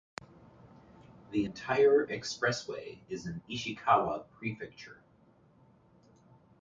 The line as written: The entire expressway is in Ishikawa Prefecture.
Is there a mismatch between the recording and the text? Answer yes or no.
no